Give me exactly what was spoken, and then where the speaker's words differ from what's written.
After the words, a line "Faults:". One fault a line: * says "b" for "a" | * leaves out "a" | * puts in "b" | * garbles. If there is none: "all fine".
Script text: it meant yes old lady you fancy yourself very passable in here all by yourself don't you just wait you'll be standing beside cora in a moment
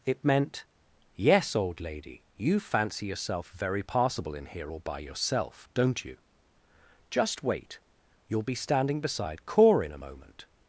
it meant yes old lady you fancy yourself very passable in here all by yourself don't you just wait you'll be standing beside cora in a moment
Faults:
all fine